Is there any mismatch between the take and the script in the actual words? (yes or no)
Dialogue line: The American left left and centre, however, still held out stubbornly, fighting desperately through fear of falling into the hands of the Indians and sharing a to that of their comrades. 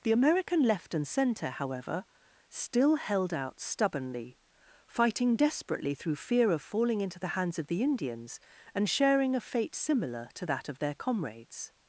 yes